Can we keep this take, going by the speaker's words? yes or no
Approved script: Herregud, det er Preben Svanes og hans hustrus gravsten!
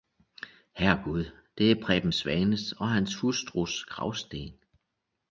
yes